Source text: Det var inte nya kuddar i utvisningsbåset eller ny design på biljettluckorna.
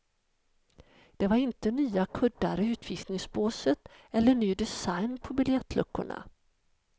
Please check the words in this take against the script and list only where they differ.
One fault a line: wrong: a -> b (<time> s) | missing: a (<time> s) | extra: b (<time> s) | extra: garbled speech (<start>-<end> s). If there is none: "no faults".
no faults